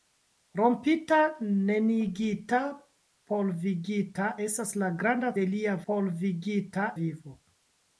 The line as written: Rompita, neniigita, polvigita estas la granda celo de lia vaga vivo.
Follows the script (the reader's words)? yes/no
no